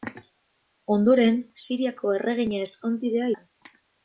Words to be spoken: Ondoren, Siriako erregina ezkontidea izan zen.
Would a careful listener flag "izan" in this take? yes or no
yes